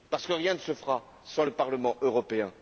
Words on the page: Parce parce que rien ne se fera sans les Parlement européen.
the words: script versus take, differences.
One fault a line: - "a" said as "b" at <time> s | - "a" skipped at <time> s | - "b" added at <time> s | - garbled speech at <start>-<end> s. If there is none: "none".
- "parce" skipped at 0.2 s
- "les" said as "le" at 1.4 s